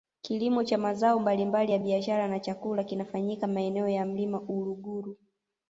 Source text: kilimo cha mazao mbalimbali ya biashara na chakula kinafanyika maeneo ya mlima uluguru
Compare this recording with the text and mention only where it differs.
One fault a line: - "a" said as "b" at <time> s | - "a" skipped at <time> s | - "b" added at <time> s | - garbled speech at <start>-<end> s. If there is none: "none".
none